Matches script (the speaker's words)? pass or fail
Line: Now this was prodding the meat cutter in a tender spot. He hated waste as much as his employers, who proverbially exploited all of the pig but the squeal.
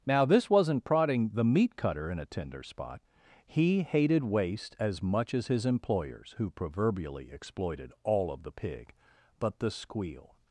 fail